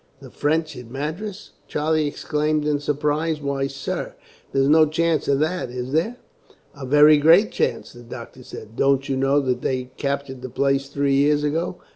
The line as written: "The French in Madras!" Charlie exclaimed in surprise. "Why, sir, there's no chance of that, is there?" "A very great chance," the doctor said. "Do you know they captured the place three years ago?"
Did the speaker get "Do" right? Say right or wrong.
wrong